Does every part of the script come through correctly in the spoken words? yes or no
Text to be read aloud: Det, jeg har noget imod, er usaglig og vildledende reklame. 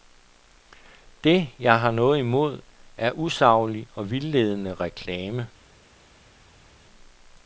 yes